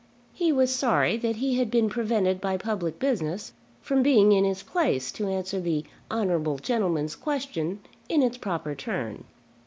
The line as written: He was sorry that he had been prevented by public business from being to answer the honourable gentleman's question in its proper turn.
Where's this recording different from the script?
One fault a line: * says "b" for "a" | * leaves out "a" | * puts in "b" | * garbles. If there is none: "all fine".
* puts in "in his place"